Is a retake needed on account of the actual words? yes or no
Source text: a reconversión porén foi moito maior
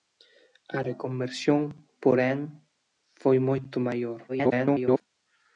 yes